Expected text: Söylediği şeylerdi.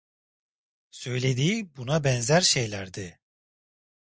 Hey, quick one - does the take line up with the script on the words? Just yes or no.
no